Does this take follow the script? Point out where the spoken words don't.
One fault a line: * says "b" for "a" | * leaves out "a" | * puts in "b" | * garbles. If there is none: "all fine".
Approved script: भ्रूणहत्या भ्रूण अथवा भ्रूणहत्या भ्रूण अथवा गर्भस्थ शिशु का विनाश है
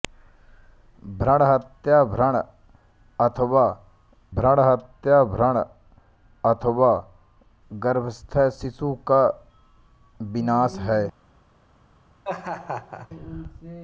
all fine